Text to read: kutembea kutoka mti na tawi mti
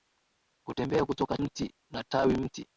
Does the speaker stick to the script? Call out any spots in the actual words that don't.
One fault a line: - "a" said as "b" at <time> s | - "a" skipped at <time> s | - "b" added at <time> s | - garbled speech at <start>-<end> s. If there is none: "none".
none